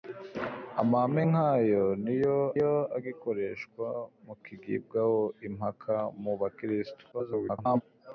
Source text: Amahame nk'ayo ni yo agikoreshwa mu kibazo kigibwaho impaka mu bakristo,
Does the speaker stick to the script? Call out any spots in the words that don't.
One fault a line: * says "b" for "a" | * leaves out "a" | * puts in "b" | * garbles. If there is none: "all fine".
* puts in "yo"
* leaves out "kibazo"
* garbles